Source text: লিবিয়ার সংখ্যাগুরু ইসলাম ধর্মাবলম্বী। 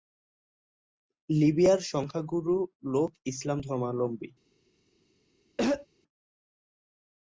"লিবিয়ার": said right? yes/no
yes